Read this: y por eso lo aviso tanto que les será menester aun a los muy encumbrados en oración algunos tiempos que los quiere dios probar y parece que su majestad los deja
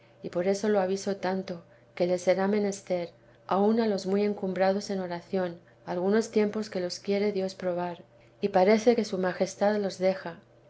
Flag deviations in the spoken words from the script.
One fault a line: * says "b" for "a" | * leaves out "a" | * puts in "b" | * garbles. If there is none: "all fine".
all fine